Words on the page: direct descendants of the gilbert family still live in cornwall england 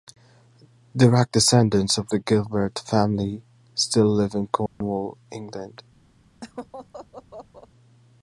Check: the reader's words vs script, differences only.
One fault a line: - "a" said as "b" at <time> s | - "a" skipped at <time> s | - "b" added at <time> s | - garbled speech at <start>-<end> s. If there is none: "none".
none